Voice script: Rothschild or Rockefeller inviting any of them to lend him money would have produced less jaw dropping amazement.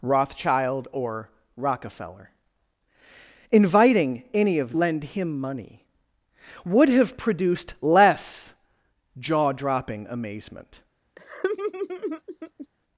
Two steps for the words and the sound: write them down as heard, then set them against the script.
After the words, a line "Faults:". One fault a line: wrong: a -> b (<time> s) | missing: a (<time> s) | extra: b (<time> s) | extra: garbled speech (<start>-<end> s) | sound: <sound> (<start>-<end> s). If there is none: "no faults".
Rothschild or Rockefeller inviting any of lend him money would have produced less jaw dropping amazement.
Faults:
missing: them to (4.8 s)
sound: laugh (11.2-12.7 s)